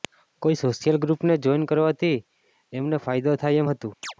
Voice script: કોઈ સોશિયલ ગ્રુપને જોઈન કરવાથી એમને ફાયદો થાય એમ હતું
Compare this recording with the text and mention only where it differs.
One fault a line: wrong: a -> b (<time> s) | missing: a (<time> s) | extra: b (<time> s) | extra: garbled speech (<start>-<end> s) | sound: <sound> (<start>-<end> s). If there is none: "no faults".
sound: chirp (4.0-4.1 s)